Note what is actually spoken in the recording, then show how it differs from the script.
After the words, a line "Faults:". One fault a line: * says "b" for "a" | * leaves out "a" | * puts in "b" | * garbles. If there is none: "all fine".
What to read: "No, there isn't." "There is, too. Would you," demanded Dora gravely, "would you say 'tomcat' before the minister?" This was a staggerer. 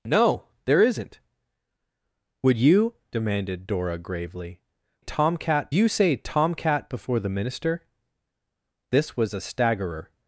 "No, there isn't. "Would you," demanded Dora gravely, "tomcat you say 'tomcat' before the minister?" This was a staggerer.
Faults:
* leaves out "There is too"
* says "tomcat" for "would"